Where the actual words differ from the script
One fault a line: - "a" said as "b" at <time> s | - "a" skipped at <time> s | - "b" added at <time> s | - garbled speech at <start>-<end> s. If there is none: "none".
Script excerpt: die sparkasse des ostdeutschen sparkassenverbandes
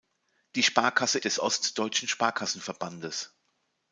none